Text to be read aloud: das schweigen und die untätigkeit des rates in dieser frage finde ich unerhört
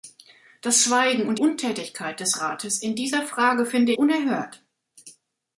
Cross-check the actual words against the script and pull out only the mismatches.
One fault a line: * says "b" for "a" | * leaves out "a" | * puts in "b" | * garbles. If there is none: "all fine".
* leaves out "die"
* leaves out "ich"